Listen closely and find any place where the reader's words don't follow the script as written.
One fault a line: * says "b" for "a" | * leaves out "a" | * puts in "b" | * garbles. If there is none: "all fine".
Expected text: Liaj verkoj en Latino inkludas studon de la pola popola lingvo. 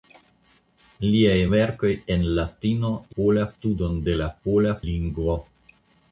* says "pola" for "inkludas"
* leaves out "popola"